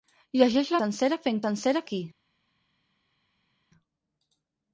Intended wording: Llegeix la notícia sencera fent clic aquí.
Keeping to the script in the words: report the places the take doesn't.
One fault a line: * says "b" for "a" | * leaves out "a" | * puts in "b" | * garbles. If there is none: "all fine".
* leaves out "notícia"
* says "sencera" for "clic"